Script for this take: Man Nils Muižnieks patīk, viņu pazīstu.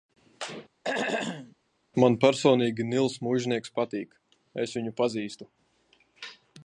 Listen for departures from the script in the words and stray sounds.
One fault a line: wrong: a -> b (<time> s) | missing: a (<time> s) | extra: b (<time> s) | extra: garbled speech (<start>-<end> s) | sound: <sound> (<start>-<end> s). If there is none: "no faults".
sound: throat clearing (0.8-1.6 s)
extra: personīgi (2.2 s)
extra: es (4.7 s)